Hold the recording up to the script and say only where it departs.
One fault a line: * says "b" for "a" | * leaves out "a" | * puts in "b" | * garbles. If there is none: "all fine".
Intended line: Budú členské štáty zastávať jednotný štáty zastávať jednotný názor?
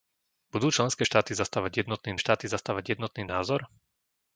all fine